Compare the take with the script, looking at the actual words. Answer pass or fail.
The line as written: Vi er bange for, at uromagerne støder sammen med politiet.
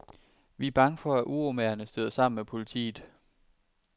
pass